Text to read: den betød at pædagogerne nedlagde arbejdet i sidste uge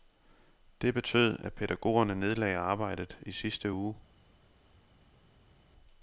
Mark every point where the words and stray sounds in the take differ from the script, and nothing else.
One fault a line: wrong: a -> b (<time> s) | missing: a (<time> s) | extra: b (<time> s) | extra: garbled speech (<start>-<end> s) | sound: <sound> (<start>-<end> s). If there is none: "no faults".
wrong: den -> det (0.8 s)